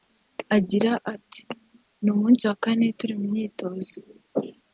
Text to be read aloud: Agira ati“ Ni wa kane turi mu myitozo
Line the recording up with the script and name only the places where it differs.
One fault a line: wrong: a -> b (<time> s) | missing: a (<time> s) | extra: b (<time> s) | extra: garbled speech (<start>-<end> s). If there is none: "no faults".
extra: umunsi (2.1 s)